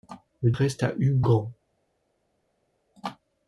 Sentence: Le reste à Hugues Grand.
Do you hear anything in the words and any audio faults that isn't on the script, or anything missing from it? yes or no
no